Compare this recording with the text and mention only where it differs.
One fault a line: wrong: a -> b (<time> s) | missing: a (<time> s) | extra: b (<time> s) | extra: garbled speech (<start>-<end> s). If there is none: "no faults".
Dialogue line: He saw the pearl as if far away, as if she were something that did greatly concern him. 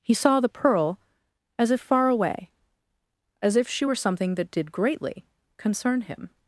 no faults